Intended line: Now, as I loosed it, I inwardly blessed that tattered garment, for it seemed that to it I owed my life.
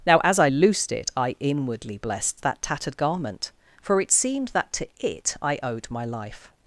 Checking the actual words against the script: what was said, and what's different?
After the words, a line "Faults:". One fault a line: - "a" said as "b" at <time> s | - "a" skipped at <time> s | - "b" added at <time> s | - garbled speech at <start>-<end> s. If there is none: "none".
Now, as I loosed it, I inwardly blessed that tattered garment, for it seemed that to it I owed my life.
Faults:
none